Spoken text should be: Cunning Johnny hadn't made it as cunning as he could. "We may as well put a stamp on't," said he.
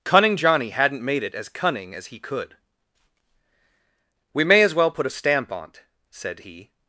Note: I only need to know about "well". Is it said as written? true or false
true